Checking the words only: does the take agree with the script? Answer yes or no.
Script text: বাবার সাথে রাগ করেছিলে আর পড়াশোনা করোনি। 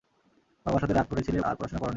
yes